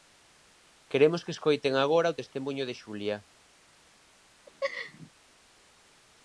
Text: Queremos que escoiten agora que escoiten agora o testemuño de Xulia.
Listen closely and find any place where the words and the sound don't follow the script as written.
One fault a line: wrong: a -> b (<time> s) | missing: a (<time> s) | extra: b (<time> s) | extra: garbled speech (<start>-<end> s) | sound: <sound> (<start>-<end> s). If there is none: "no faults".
missing: que escoiten agora (2.1 s)
sound: laugh (4.5-5.1 s)